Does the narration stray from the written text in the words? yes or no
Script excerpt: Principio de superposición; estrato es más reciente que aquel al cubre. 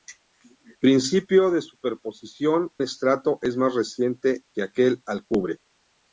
no